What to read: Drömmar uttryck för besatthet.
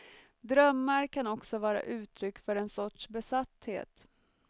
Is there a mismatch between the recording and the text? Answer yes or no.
yes